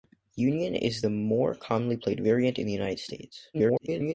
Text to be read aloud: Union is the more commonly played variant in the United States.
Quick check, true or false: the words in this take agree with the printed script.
false